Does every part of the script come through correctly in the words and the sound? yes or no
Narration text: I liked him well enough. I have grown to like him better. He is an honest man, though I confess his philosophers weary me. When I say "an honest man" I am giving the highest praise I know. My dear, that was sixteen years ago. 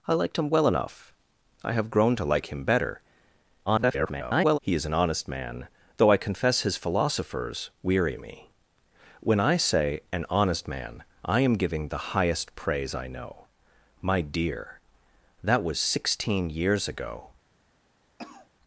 no